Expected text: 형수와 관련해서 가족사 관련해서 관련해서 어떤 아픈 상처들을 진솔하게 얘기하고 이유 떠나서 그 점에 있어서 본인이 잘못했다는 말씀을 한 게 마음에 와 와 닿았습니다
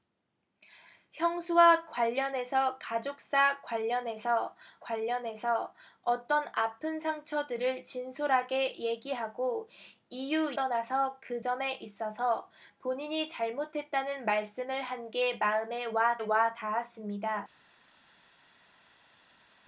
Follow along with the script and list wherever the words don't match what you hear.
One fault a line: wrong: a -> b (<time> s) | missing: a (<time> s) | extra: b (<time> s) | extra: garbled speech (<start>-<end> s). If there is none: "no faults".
no faults